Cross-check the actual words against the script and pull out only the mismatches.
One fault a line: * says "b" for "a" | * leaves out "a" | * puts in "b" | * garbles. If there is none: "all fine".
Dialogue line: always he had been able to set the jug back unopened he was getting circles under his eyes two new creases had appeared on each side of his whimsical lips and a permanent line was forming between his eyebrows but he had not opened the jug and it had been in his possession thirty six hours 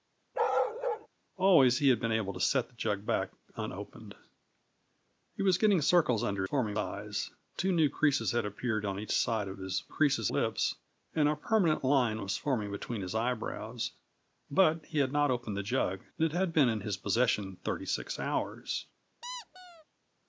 * says "forming" for "his"
* says "creases" for "whimsical"